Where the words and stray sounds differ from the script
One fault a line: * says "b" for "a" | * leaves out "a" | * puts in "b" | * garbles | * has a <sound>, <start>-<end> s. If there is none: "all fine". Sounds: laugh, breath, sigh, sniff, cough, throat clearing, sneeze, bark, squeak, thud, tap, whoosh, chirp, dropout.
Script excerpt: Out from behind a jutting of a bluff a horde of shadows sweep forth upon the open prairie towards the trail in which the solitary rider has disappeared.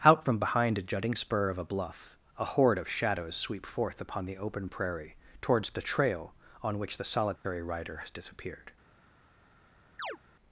* puts in "spur"
* says "on" for "in"
* has a dropout, 7.4-7.4 s
* has a chirp, 10.0-10.2 s